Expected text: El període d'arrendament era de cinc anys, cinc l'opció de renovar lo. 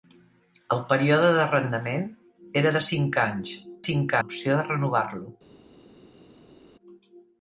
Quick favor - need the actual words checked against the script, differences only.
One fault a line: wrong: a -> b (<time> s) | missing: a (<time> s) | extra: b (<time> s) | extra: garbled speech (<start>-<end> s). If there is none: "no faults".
no faults